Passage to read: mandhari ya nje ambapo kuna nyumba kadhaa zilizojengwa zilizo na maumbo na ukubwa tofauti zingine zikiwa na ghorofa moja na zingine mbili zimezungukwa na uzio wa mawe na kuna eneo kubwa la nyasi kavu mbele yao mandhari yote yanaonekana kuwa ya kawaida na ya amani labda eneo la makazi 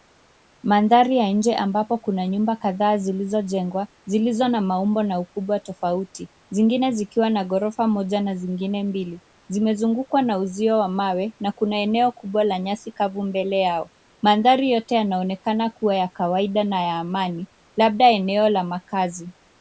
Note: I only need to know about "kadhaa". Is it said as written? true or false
true